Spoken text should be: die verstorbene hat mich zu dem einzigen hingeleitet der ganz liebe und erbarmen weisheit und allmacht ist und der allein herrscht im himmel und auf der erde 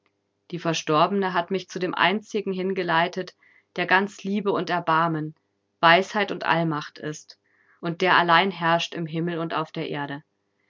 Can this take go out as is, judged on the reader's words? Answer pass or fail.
pass